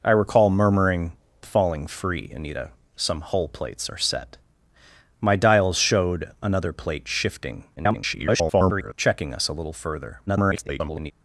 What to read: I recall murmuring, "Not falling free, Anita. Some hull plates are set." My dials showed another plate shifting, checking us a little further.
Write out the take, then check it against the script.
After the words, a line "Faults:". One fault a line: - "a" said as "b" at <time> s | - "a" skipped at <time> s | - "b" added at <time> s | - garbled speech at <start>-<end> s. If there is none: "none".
I recall murmuring, "Falling free, Anita. Some hull plates are set." My dials showed another plate shifting, [garbled] checking us a little further. [garbled]
Faults:
- "Not" skipped at 1.1 s
- garbled speech at 7.8-8.9 s
- garbled speech at 10.3-11.1 s